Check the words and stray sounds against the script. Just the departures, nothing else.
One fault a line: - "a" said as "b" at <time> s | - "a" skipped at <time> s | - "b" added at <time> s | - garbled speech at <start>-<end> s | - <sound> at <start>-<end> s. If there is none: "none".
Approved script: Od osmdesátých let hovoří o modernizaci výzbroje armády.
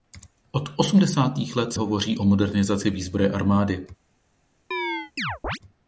- chirp at 4.7-5.6 s